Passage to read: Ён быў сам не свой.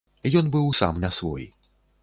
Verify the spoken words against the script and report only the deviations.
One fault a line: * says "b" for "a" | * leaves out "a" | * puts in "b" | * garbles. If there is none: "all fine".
all fine